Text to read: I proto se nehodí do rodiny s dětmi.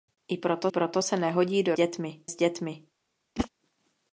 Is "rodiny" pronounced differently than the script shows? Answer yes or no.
yes